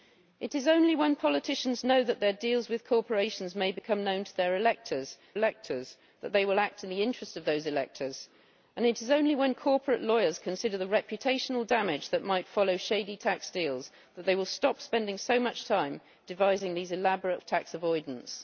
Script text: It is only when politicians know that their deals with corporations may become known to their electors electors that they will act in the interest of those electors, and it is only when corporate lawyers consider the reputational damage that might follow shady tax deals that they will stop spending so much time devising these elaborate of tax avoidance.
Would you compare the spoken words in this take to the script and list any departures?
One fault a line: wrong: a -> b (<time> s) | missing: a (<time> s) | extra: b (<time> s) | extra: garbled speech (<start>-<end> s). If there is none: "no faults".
no faults